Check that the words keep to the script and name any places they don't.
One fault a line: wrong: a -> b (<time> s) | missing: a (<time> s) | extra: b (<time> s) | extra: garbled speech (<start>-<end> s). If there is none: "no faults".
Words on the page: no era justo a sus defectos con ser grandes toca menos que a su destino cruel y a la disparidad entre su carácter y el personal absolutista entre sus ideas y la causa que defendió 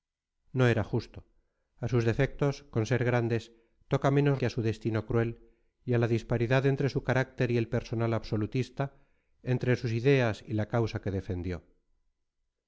no faults